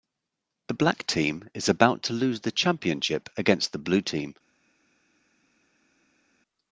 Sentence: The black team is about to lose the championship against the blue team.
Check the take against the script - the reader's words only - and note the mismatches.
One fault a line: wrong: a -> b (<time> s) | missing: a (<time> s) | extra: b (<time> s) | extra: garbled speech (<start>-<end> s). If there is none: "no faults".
no faults